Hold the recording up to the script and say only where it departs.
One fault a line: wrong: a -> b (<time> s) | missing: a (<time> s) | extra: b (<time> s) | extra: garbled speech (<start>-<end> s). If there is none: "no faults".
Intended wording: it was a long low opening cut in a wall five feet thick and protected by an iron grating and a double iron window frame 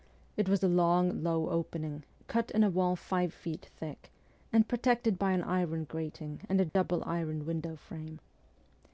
no faults